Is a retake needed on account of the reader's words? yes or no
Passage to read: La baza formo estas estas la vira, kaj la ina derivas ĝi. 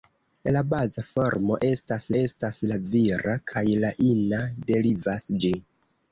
no